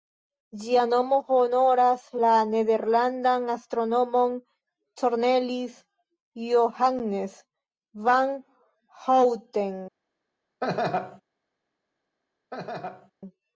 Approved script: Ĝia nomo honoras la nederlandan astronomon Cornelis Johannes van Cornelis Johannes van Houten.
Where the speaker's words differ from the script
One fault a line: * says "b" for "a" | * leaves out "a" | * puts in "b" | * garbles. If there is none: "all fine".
* leaves out "Cornelis Johannes van"